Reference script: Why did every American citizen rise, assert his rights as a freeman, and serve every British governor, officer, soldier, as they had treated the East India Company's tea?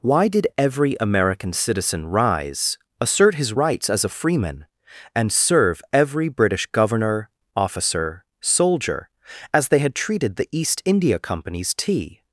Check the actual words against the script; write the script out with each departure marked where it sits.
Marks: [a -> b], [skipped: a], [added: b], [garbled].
Why did every American citizen rise, assert his rights as a freeman, and serve every British governor, officer, soldier, as they had treated the East India Company's tea?